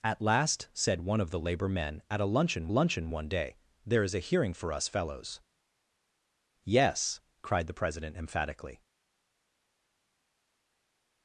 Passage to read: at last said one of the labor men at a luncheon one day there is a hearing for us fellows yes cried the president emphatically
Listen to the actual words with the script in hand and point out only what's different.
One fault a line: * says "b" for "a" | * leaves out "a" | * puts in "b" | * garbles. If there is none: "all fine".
* puts in "luncheon"